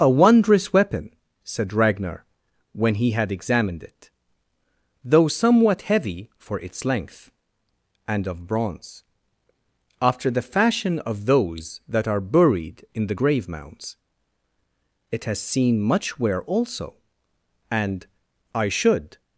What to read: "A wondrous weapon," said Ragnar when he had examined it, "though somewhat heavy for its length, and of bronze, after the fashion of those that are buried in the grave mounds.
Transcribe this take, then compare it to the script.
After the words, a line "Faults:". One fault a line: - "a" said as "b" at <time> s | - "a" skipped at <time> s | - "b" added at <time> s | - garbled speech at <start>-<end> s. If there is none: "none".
"A wondrous weapon," said Ragnar when he had examined it, "though somewhat heavy for its length, and of bronze, after the fashion of those that are buried in the grave mounds. It has seen much wear also, and, I should
Faults:
- "It has seen much wear also and I should" added at 15.1 s